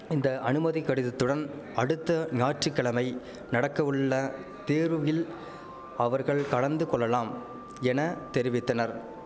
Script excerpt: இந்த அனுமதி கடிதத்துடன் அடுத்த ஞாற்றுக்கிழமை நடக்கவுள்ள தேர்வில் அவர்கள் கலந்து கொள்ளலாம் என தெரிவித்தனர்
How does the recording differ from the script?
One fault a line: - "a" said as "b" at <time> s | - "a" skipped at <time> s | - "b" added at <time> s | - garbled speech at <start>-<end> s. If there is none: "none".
none